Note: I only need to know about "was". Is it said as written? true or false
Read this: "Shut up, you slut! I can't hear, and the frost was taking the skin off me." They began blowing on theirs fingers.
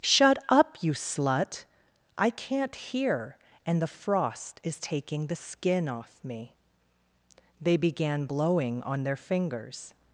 false